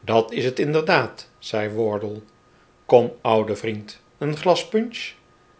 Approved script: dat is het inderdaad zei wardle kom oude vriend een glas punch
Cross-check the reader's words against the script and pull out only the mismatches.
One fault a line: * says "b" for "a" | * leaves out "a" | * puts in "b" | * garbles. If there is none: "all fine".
all fine